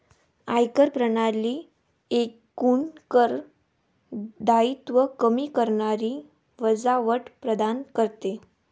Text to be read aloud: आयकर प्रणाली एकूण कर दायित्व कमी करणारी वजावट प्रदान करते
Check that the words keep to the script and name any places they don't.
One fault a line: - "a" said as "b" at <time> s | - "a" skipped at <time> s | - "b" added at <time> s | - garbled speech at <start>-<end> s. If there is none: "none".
none